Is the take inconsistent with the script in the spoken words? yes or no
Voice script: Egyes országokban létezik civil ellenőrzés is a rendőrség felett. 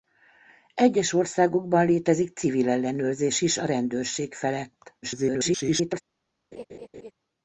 yes